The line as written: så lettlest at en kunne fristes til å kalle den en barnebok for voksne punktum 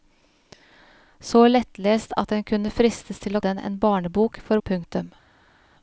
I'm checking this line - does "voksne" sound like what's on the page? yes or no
no